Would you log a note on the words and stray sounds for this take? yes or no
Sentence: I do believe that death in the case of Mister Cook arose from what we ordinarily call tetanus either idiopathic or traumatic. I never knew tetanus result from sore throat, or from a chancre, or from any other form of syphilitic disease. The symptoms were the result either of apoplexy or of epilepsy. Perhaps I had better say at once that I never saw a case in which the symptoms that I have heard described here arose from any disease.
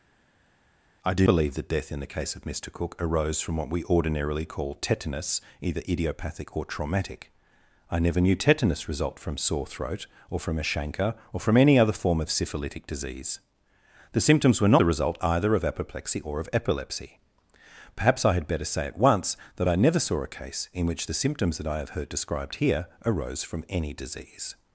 no